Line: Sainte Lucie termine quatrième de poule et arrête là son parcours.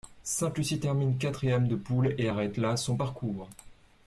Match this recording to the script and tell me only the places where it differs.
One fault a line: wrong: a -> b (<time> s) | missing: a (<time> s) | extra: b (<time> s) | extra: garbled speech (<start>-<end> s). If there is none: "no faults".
no faults